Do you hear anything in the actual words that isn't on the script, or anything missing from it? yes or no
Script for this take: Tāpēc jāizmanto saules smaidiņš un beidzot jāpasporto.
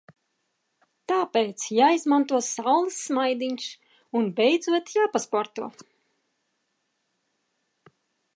no